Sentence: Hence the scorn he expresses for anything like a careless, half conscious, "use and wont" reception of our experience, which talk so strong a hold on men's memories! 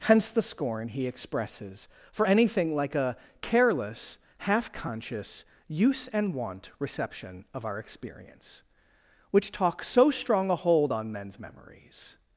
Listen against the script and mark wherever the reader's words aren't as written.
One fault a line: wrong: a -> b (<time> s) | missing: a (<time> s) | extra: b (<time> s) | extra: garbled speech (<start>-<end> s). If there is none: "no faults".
no faults